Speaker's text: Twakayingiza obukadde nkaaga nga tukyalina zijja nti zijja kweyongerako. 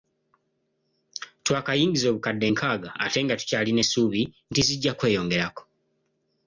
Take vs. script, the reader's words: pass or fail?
fail